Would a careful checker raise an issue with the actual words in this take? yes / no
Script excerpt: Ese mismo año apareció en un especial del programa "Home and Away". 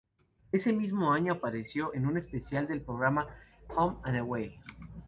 no